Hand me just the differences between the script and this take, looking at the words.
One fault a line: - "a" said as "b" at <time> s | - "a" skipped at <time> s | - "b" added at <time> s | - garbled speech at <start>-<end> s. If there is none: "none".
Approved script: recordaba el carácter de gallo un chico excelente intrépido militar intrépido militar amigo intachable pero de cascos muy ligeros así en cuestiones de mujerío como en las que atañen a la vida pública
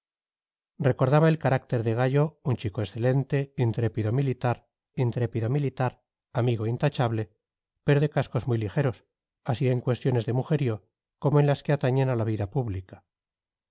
none